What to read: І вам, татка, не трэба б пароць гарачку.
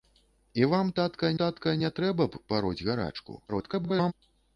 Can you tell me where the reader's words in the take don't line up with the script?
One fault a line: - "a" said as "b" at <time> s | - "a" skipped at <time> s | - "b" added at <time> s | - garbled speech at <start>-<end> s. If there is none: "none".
- "татка" added at 1.4 s
- garbled speech at 3.5-4.1 s